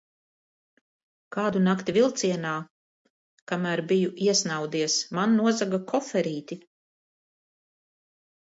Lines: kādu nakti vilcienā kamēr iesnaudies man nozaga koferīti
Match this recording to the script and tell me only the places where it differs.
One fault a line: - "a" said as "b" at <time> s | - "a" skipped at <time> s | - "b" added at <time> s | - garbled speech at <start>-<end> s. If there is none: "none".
- "biju" added at 3.9 s